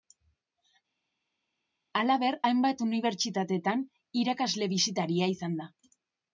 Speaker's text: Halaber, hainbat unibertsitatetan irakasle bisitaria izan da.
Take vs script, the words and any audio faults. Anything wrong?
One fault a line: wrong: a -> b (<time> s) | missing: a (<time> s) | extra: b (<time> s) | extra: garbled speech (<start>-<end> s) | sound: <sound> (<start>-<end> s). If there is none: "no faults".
no faults